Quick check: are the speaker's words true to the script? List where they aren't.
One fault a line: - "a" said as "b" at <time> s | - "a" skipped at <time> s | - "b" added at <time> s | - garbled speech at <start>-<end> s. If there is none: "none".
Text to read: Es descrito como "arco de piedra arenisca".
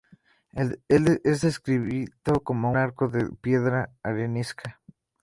none